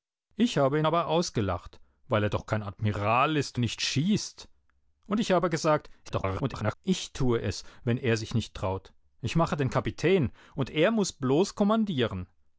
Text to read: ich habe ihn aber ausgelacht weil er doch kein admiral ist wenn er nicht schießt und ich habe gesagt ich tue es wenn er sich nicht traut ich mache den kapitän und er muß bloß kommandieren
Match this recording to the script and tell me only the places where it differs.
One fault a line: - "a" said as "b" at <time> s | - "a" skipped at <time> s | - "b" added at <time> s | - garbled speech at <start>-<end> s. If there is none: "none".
- "wenn" skipped at 3.6 s
- garbled speech at 6.0-6.8 s